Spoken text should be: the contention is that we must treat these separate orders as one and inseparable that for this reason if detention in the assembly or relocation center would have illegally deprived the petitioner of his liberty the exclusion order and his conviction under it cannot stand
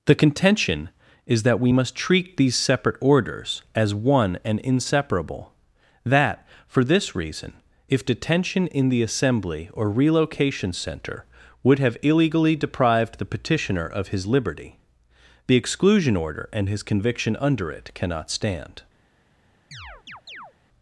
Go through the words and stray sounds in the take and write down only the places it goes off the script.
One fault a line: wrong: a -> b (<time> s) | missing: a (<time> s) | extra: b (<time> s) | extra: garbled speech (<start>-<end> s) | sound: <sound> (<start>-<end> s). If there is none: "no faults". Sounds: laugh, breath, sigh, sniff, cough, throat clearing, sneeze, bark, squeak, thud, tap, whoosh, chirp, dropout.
sound: chirp (19.7-20.5 s)